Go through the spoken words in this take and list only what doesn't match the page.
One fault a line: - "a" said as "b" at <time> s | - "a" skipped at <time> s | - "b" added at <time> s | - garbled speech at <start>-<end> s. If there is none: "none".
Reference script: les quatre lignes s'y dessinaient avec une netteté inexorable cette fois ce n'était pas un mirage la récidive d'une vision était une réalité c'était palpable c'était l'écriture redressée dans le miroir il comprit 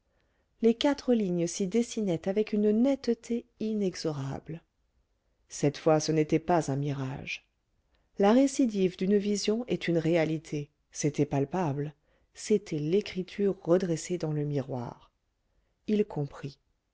- "était" said as "est" at 9.7 s